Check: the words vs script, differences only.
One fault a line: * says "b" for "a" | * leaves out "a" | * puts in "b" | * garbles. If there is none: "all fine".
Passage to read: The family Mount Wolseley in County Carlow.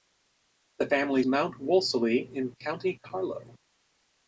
all fine